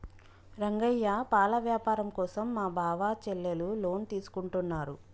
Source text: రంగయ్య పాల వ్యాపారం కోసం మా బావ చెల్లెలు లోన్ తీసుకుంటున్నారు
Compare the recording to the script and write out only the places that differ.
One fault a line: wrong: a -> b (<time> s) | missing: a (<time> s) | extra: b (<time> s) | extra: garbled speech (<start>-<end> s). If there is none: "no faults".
no faults